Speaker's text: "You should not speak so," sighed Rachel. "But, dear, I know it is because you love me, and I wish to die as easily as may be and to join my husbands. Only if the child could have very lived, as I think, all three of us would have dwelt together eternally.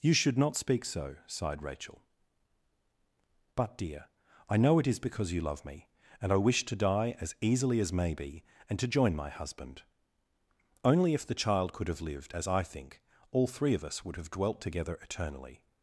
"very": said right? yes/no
no